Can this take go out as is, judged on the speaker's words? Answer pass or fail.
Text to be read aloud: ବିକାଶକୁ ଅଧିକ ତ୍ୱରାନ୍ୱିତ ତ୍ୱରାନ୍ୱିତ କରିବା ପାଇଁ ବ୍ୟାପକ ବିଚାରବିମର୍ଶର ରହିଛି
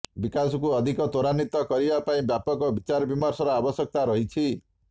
fail